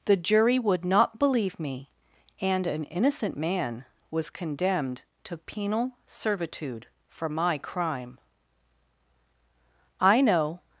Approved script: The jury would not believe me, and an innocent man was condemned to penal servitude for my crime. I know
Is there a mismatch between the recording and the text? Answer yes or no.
no